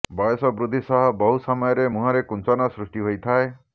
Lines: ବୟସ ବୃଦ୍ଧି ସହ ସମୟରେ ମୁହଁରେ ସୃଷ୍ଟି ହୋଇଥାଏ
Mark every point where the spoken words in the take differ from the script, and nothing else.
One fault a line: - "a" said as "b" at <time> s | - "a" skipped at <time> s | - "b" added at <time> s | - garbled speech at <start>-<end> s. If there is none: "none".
- "ବହୁ" added at 1.2 s
- "କୁଞ୍ଚନ" added at 2.3 s